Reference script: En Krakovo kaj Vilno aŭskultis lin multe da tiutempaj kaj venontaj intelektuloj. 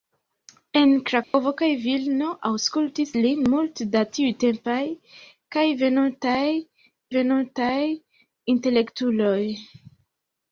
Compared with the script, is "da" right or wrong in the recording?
right